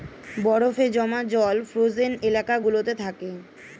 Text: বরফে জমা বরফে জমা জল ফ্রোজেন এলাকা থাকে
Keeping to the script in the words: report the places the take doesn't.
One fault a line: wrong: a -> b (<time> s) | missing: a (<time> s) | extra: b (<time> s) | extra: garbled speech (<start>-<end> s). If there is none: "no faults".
missing: বরফে জমা (1.2 s)
extra: গুলোতে (2.6 s)